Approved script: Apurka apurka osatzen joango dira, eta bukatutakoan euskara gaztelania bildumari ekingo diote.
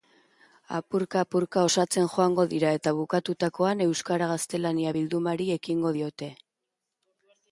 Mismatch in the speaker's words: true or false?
false